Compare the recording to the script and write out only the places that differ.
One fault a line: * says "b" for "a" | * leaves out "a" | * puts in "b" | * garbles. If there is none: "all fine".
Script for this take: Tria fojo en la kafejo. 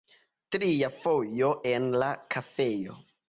all fine